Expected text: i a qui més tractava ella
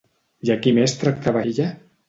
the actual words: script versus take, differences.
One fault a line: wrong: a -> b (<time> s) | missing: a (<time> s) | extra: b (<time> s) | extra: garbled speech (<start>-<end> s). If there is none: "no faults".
no faults